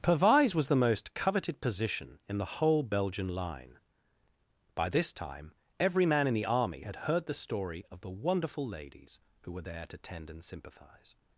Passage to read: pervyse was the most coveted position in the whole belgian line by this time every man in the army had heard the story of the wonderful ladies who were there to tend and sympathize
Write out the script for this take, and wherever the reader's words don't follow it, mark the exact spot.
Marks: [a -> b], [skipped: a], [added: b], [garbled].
pervyse was the most coveted position in the whole belgian line by this time every man in the army had heard the story of the wonderful ladies who were there to tend and sympathize